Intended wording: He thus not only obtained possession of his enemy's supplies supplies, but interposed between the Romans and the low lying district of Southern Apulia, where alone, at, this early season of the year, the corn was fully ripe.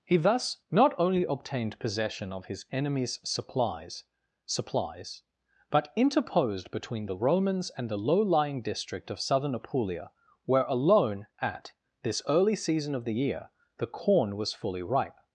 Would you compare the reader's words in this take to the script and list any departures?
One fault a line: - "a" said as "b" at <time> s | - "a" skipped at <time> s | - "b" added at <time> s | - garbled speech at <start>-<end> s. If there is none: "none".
none